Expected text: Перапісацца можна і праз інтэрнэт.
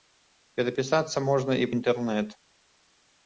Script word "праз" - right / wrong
wrong